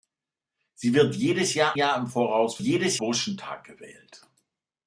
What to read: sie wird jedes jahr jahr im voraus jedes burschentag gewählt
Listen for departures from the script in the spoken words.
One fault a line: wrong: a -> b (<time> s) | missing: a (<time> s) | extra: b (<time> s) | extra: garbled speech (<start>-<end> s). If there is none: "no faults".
no faults